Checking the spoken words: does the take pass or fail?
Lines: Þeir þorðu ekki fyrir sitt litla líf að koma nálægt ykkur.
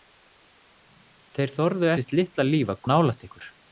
fail